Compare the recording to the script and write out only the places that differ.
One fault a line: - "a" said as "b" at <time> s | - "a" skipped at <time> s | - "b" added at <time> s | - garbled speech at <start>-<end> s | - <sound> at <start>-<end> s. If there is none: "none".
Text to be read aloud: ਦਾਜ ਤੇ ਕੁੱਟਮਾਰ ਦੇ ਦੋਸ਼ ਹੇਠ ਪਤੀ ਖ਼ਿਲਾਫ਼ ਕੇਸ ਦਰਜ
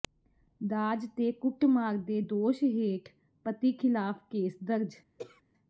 - throat clearing at 5.2-5.4 s